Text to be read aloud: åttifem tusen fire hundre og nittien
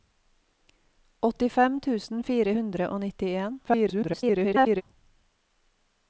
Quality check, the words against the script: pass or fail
fail